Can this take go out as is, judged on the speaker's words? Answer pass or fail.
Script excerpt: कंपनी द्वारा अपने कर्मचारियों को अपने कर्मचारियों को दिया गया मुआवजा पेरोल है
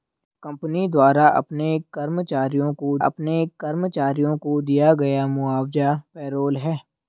pass